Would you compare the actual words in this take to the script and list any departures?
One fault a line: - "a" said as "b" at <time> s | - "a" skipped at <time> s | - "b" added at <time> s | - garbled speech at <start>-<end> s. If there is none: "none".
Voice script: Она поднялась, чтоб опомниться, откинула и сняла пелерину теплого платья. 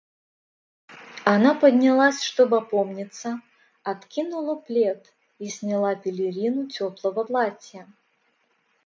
- "плед" added at 4.5 s